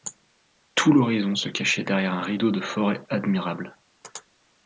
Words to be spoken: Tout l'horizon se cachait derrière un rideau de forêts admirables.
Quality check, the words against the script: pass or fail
pass